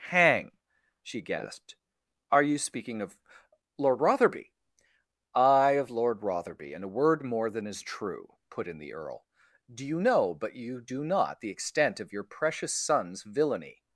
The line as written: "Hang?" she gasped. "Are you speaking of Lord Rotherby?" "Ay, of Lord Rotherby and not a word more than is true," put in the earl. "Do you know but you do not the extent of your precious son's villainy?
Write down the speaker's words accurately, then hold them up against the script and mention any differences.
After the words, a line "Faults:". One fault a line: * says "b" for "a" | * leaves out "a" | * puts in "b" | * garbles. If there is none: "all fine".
"Hang?" she gasped. "Are you speaking of Lord Rotherby?" "Ay, of Lord Rotherby and a word more than is true," put in the earl. "Do you know but you do not the extent of your precious son's villainy?
Faults:
* leaves out "not"